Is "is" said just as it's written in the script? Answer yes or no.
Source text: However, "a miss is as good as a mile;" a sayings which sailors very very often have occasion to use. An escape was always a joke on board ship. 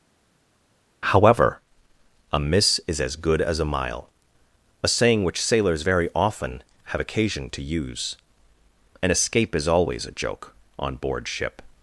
yes